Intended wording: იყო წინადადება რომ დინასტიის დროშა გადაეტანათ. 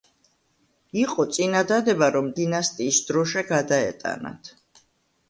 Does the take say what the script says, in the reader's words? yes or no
yes